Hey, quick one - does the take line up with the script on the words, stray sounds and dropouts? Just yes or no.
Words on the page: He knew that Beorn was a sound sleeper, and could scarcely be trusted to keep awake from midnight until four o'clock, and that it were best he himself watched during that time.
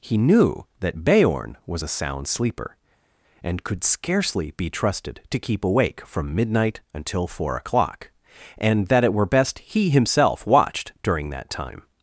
yes